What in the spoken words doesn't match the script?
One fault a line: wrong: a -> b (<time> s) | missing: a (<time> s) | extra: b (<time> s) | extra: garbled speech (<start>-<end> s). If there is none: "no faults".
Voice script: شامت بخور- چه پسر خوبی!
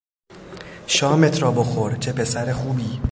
extra: را (1.4 s)